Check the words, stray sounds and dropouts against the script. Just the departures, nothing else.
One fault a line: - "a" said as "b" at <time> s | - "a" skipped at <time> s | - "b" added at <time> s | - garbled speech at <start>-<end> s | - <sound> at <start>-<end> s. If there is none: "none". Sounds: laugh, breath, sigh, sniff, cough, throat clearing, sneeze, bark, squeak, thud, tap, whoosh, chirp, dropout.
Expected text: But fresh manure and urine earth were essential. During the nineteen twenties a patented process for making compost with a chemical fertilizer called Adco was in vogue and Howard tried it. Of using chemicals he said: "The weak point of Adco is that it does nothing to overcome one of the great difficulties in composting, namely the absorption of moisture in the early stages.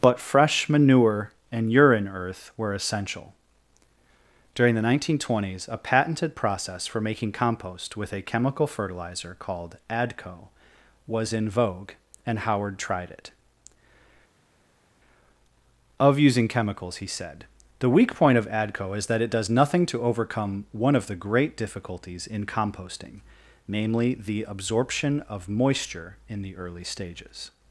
none